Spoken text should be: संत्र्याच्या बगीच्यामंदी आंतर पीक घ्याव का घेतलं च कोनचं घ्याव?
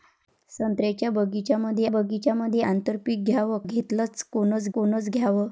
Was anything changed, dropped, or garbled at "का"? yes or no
yes